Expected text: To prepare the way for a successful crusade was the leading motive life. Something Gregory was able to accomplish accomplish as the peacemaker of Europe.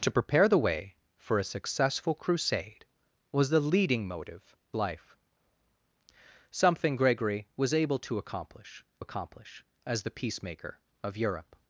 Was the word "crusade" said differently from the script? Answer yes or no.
no